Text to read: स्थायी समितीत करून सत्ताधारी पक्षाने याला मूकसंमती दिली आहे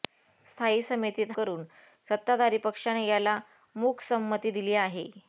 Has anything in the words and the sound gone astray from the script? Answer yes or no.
no